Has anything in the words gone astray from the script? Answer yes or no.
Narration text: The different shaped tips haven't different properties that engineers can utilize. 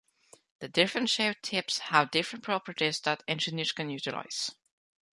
yes